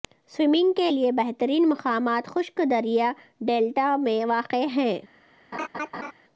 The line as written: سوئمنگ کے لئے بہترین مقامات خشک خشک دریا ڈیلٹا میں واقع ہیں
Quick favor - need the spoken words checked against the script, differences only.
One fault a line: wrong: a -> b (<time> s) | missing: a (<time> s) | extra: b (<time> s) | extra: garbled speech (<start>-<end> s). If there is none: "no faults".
missing: خشک (2.6 s)